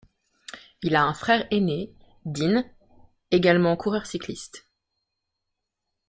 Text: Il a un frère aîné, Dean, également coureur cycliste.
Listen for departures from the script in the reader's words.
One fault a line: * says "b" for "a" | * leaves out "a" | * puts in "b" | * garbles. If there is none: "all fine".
all fine